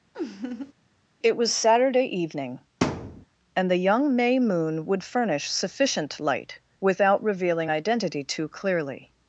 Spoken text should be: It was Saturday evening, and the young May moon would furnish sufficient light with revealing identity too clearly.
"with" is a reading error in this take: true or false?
true